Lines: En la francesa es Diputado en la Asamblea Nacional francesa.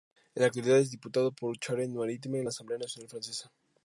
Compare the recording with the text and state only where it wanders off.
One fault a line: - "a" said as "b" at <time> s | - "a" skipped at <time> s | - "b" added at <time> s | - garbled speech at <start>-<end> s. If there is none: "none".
- "francesa" said as "actualidad" at 0.5 s
- "por Charente Maritime" added at 1.3 s